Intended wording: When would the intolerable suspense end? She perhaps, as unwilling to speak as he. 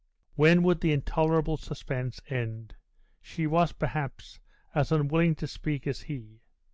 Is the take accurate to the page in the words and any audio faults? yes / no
no